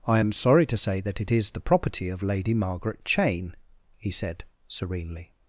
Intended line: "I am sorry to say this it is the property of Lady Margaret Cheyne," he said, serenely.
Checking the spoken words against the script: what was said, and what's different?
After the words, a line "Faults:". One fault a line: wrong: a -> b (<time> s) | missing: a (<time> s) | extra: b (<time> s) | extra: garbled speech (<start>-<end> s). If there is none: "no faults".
"I am sorry to say that it is the property of Lady Margaret Cheyne," he said, serenely.
Faults:
wrong: this -> that (1.0 s)